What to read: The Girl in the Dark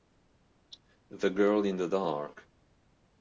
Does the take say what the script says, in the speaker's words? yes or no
yes